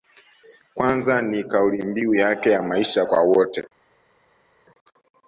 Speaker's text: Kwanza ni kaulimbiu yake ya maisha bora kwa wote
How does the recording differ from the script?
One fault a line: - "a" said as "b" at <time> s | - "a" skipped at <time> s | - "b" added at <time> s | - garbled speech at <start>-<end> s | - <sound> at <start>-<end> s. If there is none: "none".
- "bora" skipped at 3.0 s